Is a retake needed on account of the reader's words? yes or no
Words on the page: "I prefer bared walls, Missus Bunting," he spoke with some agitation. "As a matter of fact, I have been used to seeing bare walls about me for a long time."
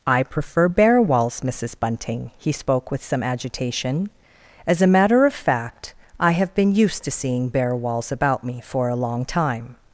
yes